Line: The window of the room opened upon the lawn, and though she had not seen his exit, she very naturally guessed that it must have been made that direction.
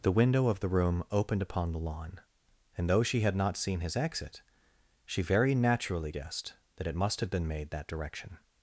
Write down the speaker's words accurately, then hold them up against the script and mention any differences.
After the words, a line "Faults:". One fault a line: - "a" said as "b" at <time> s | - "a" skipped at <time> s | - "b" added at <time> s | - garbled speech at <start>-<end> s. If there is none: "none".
The window of the room opened upon the lawn, and though she had not seen his exit, she very naturally guessed that it must have been made that direction.
Faults:
none